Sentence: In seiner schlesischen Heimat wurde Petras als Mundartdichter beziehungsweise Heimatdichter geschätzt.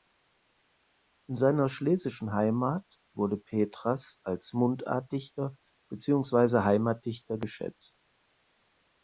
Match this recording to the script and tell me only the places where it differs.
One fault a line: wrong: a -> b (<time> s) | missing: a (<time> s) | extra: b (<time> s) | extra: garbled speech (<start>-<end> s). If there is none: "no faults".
no faults